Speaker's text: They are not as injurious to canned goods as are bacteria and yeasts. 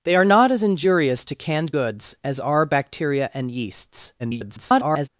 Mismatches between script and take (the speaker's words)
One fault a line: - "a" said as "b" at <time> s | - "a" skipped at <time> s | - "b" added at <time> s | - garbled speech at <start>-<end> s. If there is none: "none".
- garbled speech at 4.2-5.1 s